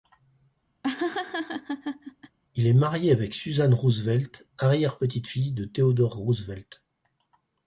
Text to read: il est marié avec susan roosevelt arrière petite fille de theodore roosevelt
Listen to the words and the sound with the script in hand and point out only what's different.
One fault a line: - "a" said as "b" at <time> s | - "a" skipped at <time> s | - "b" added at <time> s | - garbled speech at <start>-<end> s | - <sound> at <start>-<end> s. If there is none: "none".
- laugh at 0.8-2.4 s